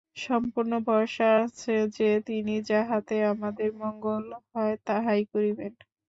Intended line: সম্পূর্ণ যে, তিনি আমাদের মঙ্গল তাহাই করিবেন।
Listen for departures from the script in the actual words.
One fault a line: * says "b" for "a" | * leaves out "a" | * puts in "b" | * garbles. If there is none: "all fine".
* puts in "ভরসা আছে"
* puts in "যাহাতে"
* puts in "হয়"